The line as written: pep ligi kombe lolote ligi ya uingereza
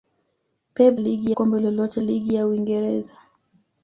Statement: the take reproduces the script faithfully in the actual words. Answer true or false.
true